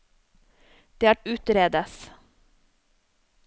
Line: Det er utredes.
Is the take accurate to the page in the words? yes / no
yes